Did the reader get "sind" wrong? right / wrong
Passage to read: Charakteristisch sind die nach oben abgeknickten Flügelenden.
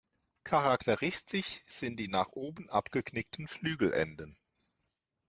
right